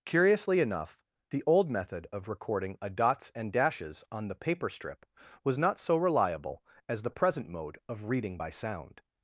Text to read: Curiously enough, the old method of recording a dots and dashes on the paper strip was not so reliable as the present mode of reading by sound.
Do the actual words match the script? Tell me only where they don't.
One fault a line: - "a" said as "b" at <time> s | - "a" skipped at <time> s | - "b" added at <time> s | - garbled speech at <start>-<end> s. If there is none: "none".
none